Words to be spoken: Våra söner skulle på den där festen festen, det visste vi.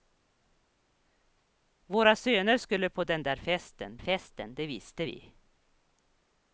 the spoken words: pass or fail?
pass